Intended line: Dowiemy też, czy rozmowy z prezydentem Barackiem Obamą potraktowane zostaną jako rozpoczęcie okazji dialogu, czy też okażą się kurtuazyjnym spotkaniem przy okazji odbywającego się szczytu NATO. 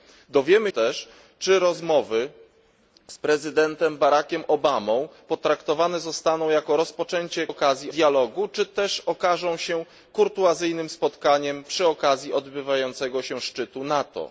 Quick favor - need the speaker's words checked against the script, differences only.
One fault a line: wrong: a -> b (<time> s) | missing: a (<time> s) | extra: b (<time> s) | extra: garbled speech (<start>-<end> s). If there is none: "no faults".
no faults